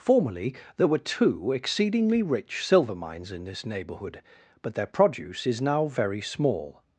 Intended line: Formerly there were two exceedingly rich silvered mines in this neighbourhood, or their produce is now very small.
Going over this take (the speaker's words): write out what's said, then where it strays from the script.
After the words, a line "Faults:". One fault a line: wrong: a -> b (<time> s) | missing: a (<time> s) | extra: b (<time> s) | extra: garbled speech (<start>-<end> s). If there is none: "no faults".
Formerly there were two exceedingly rich silver mines in this neighbourhood, but their produce is now very small.
Faults:
wrong: silvered -> silver (2.6 s)
wrong: or -> but (4.6 s)